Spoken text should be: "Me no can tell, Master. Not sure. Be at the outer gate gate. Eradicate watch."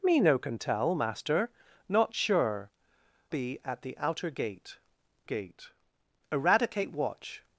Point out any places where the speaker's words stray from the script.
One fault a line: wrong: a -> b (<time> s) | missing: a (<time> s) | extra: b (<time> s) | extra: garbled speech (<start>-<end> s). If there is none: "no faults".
no faults